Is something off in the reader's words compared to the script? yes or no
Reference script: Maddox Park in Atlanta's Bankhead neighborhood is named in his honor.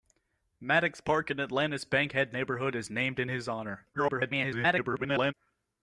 yes